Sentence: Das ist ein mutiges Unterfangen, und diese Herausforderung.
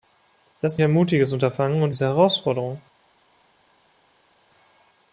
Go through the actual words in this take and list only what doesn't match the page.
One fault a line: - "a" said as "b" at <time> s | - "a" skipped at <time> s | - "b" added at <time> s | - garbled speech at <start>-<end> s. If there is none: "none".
none